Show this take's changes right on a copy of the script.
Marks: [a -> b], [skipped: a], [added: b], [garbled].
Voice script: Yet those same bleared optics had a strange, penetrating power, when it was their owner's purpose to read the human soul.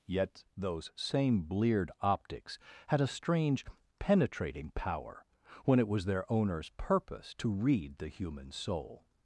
Yet those same bleared optics had a strange, penetrating power, when it was their owner's purpose to read the human soul.